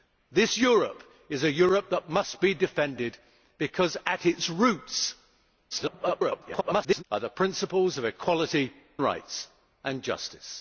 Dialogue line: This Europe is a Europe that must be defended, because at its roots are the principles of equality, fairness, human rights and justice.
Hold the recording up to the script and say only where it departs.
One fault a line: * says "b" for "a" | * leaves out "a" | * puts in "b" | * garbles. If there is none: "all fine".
* garbles
* leaves out "fairness human"